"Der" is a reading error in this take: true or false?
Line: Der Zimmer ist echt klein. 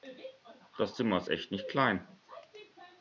true